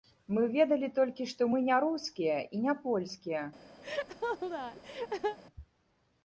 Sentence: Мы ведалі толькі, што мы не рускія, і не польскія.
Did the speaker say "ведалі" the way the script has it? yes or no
yes